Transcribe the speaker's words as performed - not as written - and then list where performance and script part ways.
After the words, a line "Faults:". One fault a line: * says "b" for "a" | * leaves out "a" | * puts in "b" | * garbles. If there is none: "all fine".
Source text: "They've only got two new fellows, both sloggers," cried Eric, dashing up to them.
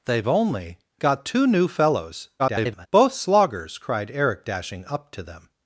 "They've only got two new fellows, [garbled] both sloggers," cried Eric, dashing up to them.
Faults:
* garbles